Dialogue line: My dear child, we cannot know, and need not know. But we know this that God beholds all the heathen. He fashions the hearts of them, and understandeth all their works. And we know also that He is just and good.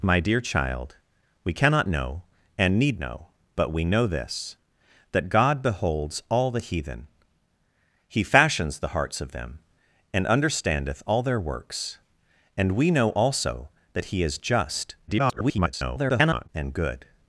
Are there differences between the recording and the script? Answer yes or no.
yes